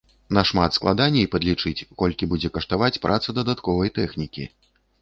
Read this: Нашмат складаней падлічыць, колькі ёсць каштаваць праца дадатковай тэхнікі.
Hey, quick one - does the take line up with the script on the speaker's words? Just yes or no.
no